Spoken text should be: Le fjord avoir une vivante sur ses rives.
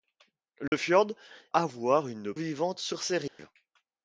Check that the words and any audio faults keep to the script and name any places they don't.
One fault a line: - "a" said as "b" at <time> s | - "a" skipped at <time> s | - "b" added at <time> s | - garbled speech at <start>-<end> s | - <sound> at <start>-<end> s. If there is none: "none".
- dropout at 0.7-0.7 s
- dropout at 3.3-3.4 s